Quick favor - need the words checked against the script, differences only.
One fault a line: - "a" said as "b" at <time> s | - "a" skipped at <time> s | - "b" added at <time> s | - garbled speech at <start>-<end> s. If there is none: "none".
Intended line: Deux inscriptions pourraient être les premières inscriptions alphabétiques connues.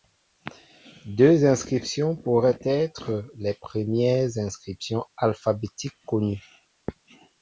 none